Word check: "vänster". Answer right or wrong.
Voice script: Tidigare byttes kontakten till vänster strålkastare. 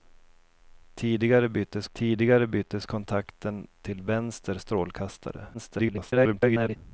right